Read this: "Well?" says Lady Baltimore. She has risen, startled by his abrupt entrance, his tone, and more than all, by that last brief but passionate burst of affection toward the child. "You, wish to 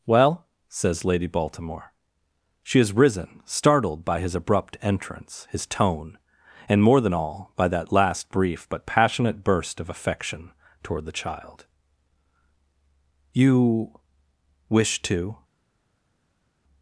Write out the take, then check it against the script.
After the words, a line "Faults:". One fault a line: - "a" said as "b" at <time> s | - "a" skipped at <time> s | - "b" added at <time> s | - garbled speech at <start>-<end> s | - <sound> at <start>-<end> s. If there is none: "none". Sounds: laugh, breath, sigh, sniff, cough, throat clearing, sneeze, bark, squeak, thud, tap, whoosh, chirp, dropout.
"Well?" says Lady Baltimore. She has risen, startled by his abrupt entrance, his tone, and more than all, by that last brief but passionate burst of affection toward the child. "You, wish to
Faults:
none